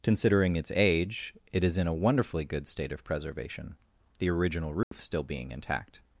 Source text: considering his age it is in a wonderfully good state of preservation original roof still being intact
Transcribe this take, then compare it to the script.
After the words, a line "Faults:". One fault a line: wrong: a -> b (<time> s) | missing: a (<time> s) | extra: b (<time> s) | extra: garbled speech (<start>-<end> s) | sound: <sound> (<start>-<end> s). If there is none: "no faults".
considering its age it is in a wonderfully good state of preservation the original roof still being intact
Faults:
wrong: his -> its (0.6 s)
extra: the (4.2 s)
sound: dropout (4.8-4.9 s)